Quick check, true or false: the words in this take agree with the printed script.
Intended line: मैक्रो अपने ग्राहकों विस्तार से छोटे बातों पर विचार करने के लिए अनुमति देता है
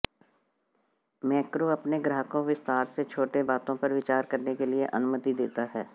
true